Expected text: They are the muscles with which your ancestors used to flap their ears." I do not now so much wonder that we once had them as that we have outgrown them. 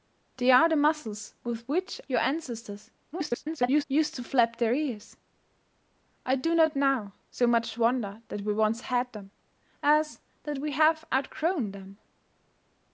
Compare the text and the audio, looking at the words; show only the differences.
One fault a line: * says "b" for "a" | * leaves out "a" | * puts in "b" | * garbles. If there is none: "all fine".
* garbles